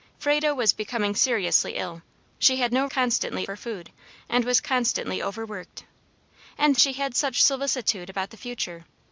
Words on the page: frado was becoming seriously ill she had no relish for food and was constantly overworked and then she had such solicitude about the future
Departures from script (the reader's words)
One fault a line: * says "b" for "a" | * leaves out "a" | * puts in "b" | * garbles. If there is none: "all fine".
* says "constantly" for "relish"
* leaves out "then"